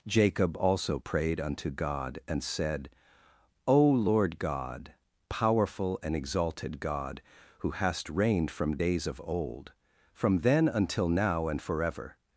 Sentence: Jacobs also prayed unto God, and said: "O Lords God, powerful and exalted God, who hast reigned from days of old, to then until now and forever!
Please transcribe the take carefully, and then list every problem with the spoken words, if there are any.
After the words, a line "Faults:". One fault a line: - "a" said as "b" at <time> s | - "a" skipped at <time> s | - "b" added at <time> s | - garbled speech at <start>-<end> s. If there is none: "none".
Jacob also prayed unto God, and said: "O Lord God, powerful and exalted God, who hast reigned from days of old, from then until now and forever!
Faults:
- "Jacobs" said as "Jacob" at 0.1 s
- "Lords" said as "Lord" at 3.9 s
- "to" said as "from" at 10.1 s